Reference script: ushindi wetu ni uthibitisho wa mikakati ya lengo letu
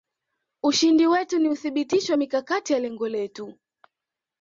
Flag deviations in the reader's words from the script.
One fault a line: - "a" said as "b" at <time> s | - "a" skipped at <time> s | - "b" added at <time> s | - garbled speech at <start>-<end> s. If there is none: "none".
none